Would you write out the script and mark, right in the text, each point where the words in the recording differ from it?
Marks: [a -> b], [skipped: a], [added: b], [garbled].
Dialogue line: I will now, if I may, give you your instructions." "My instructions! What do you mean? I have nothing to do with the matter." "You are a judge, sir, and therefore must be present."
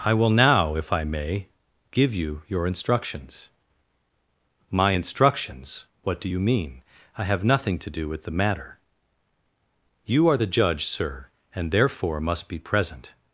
I will now, if I may, give you your instructions." "My instructions! What do you mean? I have nothing to do with the matter." "You are [a -> the] judge, sir, and therefore must be present."